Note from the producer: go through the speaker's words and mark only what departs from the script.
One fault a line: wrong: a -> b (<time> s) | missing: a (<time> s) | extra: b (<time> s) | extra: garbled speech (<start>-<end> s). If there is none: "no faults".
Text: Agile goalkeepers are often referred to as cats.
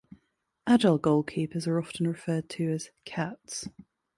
no faults